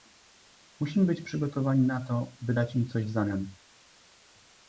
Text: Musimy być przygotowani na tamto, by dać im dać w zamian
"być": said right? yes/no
yes